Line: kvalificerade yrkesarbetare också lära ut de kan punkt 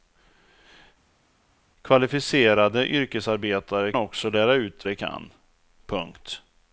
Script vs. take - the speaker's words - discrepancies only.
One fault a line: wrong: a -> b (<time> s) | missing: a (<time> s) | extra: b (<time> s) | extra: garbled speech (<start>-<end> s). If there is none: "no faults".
no faults